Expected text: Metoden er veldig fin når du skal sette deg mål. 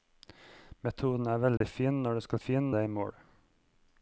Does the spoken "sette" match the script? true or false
false